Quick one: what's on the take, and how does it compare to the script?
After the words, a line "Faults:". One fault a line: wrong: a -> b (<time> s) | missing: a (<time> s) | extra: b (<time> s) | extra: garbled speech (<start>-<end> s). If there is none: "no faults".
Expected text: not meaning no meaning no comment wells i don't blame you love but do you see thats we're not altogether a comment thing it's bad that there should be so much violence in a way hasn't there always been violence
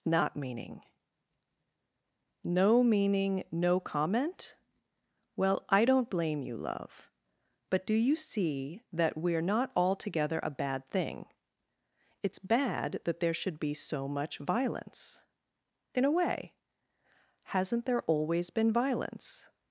not meaning no meaning no comment well i don't blame you love but do you see that we're not altogether a bad thing it's bad that there should be so much violence in a way hasn't there always been violence
Faults:
wrong: wells -> well (5.3 s)
wrong: thats -> that (8.9 s)
wrong: comment -> bad (10.5 s)